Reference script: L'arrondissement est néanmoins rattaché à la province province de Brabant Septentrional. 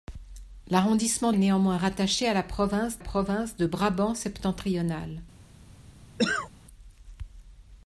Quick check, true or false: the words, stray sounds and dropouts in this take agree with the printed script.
false